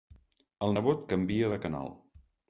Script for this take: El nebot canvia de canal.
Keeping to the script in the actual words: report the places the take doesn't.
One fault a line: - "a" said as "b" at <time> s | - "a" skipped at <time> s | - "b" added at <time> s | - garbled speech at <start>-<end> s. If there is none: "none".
none